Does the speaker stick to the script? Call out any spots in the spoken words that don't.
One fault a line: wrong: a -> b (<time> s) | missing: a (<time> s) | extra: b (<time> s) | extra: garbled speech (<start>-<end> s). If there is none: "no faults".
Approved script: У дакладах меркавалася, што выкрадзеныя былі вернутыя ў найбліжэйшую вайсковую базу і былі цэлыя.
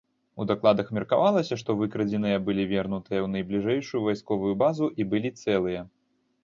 no faults